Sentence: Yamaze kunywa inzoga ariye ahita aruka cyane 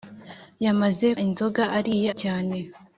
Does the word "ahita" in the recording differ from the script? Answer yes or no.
yes